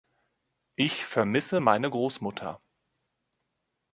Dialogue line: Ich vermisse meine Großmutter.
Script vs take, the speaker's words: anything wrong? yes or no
no